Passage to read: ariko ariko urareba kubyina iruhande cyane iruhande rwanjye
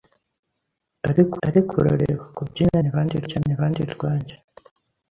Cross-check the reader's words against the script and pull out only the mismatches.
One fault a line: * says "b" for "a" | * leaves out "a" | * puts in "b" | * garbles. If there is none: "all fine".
all fine